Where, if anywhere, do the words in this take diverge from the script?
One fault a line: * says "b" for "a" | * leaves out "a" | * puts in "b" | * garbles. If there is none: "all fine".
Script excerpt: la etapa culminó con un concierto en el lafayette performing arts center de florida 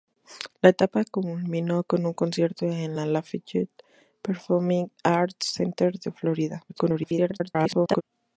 * garbles